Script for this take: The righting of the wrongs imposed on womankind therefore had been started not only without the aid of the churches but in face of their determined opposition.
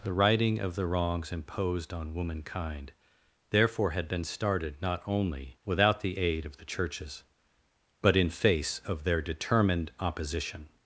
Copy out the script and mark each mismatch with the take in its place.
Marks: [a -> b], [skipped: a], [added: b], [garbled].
The righting of the wrongs imposed on womankind therefore had been started not only without the aid of the churches but in face of their determined opposition.